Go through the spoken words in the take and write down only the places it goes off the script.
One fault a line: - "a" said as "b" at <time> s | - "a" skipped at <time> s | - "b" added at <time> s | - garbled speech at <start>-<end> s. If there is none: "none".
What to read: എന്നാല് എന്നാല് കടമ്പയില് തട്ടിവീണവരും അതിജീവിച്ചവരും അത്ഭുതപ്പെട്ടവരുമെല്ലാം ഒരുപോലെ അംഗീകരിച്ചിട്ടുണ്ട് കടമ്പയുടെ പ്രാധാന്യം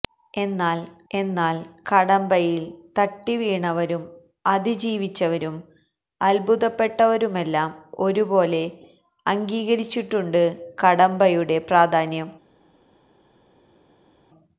none